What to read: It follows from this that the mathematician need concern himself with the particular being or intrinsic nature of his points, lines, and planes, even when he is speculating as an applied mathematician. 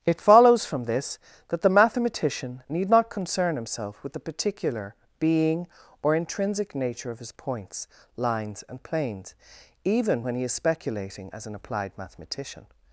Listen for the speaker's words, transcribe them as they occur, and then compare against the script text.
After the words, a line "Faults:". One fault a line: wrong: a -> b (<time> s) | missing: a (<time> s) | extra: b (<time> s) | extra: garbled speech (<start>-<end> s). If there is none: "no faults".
It follows from this that the mathematician need not concern himself with the particular being or intrinsic nature of his points, lines, and planes, even when he is speculating as an applied mathematician.
Faults:
extra: not (2.9 s)